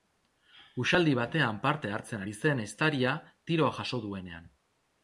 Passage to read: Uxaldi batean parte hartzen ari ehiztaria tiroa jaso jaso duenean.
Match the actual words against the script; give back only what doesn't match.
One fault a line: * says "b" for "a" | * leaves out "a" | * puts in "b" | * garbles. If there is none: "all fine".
* puts in "zen"
* leaves out "jaso"